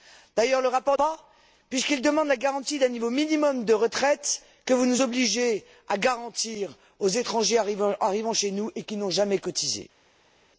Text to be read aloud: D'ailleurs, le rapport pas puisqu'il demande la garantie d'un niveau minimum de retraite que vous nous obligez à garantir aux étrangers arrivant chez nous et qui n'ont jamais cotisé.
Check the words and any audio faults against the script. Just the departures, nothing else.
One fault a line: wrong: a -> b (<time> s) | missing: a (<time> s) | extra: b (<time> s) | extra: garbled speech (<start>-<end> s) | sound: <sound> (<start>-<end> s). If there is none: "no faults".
no faults